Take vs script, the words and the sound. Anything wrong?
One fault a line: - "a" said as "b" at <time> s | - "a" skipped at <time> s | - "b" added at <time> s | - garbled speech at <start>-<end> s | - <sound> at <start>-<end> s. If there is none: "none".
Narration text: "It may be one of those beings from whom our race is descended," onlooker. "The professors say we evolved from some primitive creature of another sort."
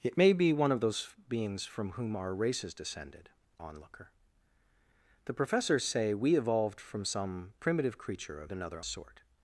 none